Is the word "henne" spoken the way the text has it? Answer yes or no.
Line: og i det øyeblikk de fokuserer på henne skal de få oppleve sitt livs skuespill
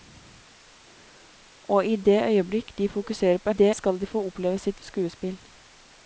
no